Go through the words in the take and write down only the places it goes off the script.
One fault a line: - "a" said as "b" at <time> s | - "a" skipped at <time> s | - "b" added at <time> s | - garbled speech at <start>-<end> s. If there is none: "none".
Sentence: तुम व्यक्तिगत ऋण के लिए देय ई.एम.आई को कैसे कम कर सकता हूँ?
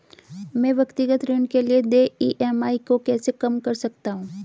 - "तुम" said as "मैं" at 0.6 s